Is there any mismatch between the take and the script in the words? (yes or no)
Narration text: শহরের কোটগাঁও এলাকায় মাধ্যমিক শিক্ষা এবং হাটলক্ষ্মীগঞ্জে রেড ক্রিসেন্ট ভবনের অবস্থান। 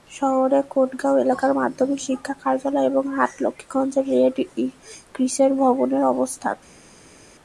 yes